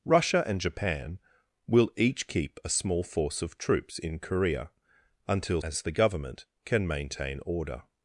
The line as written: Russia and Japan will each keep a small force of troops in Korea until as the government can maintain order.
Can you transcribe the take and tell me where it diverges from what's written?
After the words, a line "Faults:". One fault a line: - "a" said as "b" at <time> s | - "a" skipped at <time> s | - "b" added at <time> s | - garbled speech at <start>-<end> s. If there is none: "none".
Russia and Japan will each keep a small force of troops in Korea until as the government can maintain order.
Faults:
none